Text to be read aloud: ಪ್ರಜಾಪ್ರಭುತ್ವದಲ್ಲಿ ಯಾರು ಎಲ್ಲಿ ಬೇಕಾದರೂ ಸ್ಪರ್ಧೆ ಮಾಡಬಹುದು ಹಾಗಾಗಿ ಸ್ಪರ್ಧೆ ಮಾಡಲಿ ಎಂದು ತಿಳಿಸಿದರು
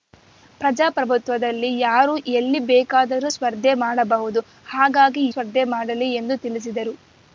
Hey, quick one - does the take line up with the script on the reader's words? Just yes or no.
yes